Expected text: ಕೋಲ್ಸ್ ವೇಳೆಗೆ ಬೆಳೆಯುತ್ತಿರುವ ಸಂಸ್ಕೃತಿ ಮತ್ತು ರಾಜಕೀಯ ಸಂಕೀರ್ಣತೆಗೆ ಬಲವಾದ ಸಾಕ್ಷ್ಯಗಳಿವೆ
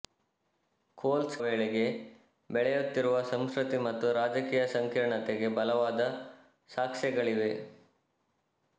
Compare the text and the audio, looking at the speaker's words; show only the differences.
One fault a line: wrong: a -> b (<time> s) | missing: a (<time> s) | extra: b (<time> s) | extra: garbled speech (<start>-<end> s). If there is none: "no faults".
no faults